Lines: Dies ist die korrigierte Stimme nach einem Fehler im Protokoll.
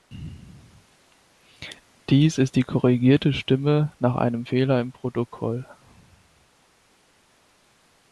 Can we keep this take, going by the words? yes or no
yes